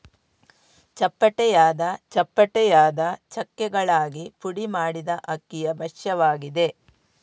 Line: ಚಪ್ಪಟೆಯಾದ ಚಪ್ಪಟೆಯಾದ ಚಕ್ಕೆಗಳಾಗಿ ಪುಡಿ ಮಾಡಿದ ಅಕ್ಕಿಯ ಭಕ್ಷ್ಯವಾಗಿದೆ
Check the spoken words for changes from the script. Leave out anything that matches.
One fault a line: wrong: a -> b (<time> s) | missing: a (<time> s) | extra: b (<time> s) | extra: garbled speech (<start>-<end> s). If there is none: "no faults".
no faults